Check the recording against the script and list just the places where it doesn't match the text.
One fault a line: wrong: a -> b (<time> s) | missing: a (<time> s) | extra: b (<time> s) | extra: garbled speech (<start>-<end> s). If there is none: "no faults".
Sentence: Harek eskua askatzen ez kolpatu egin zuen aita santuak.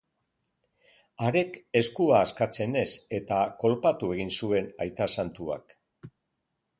extra: eta (3.2 s)